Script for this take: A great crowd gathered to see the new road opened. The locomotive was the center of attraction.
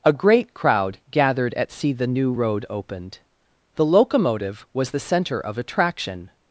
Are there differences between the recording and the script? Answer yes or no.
yes